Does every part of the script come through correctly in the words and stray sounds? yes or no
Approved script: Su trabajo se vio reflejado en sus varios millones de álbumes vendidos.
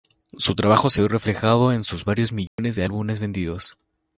no